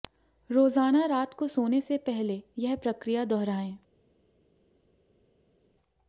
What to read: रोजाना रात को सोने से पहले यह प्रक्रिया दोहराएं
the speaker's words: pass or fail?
pass